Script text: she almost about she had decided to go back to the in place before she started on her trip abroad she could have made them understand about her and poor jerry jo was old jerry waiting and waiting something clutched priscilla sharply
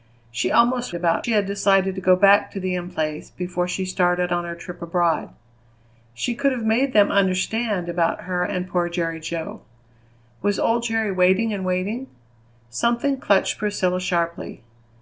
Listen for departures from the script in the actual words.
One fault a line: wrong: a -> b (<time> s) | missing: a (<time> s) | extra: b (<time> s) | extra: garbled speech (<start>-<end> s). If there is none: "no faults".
no faults